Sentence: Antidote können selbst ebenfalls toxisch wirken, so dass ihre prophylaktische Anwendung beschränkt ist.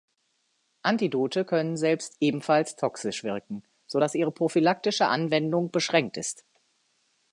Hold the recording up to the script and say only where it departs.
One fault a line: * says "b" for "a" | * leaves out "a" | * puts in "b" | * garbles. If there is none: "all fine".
all fine